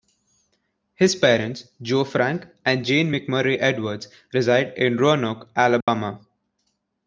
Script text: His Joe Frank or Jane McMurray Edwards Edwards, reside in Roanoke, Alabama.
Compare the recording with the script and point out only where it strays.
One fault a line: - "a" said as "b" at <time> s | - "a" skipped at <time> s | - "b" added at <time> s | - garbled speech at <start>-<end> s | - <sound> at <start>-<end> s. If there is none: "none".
- "parents" added at 1.1 s
- "or" said as "and" at 2.6 s
- "Edwards" skipped at 4.1 s
- dropout at 5.8-5.9 s